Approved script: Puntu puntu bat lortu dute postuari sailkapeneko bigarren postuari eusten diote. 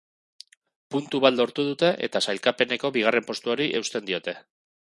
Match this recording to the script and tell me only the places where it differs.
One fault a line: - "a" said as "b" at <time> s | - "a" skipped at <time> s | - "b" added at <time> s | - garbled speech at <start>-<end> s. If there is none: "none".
- "puntu" skipped at 1.2 s
- "postuari" said as "eta" at 2.1 s